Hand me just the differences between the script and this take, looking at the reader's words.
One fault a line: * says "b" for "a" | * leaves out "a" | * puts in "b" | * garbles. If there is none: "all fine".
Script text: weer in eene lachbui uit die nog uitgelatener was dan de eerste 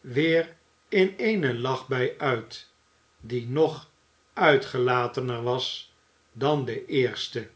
all fine